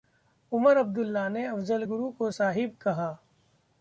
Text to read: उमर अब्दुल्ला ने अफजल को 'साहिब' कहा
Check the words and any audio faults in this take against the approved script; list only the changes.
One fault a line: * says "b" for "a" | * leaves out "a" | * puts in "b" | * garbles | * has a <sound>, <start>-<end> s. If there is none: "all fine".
* puts in "गुरु"